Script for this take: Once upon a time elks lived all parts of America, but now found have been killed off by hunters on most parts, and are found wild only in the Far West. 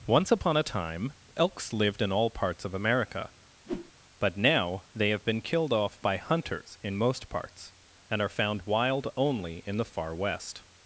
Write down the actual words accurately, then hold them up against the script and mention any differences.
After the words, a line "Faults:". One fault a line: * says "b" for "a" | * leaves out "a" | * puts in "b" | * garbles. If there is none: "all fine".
Once upon a time elks lived in all parts of America, but now they have been killed off by hunters in most parts, and are found wild only in the Far West.
Faults:
* puts in "in"
* says "they" for "found"
* says "in" for "on"